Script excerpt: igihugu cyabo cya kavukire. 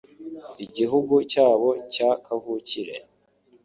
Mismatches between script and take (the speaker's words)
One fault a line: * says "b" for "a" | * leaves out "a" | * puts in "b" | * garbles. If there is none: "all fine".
all fine